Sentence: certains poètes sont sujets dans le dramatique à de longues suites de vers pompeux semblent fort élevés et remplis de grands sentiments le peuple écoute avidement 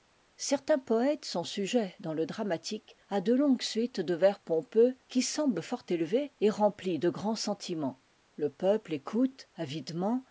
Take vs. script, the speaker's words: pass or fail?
fail